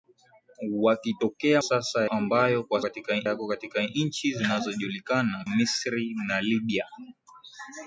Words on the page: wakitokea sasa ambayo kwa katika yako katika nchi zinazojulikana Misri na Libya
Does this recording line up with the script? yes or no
yes